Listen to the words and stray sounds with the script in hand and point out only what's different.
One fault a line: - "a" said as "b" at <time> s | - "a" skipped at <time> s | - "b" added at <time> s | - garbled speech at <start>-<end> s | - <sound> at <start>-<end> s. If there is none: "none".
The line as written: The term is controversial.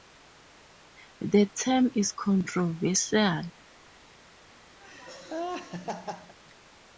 - laugh at 4.8-6.4 s